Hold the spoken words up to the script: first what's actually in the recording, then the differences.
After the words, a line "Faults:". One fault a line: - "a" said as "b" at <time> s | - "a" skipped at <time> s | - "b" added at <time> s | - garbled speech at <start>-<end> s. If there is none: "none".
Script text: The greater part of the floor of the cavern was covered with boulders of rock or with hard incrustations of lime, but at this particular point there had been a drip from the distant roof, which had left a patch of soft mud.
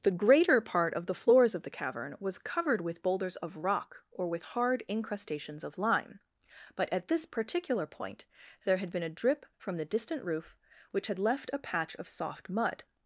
The greater part of the floors of the cavern was covered with boulders of rock or with hard incrustations of lime, but at this particular point there had been a drip from the distant roof, which had left a patch of soft mud.
Faults:
- "floor" said as "floors" at 1.1 s